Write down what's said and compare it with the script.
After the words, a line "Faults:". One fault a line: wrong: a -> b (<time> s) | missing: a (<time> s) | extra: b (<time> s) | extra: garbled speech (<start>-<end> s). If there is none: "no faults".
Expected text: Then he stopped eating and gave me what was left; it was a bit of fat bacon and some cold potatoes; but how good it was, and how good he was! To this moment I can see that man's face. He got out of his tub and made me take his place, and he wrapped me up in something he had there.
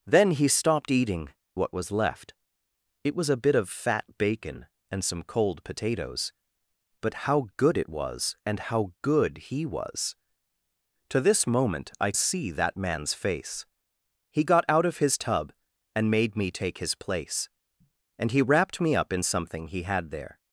Then he stopped eating what was left; it was a bit of fat bacon and some cold potatoes; but how good it was, and how good he was! To this moment I see that man's face. He got out of his tub and made me take his place, and he wrapped me up in something he had there.
Faults:
missing: and gave me (1.3 s)
missing: can (12.1 s)